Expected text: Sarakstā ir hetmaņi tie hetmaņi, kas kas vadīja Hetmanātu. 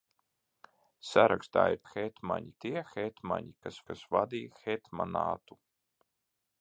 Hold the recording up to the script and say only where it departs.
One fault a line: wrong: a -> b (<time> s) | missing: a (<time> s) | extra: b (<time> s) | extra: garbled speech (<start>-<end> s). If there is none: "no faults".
no faults